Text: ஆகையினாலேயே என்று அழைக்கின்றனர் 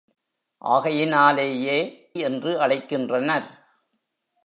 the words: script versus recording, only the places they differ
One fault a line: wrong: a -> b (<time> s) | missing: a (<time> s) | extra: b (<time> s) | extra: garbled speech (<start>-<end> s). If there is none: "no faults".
no faults